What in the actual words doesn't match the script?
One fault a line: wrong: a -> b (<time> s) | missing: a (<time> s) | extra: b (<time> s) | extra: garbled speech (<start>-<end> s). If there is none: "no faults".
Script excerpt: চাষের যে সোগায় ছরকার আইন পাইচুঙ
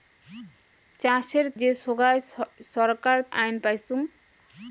no faults